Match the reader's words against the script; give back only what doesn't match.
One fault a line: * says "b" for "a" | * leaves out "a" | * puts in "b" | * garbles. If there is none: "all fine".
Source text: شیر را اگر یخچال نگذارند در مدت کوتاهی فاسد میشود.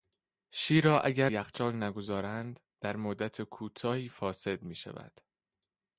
all fine